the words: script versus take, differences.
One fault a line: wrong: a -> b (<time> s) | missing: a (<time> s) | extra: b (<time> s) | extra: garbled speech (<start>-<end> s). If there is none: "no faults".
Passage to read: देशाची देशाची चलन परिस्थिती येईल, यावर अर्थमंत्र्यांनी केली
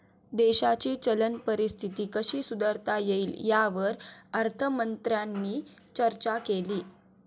missing: देशाची (0.9 s)
extra: कशी सुधारता (2.1 s)
extra: चर्चा (6.0 s)